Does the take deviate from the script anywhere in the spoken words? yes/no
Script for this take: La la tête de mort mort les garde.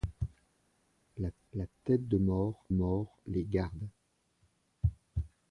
no